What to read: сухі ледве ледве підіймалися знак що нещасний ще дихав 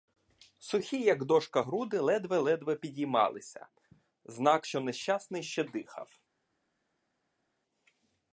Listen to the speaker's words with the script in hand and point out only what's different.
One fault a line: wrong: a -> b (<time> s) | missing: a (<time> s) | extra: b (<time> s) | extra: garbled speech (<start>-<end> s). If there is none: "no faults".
extra: як дошка груди (1.0 s)